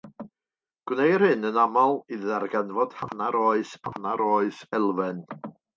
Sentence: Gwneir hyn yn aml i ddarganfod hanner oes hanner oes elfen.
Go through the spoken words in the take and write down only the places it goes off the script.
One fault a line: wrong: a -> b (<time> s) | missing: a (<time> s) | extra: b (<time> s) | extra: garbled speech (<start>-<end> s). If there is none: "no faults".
no faults